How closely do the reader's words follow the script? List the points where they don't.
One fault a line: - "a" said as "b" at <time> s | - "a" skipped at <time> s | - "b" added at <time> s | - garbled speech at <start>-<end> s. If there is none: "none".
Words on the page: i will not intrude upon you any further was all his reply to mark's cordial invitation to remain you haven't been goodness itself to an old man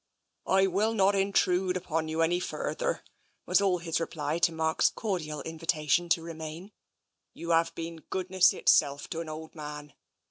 - "haven't" said as "have" at 7.5 s